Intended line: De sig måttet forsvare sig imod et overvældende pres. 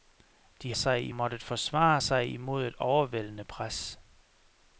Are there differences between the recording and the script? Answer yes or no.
no